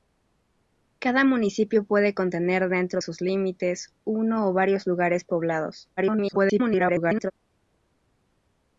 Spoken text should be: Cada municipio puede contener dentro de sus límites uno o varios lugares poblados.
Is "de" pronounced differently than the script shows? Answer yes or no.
yes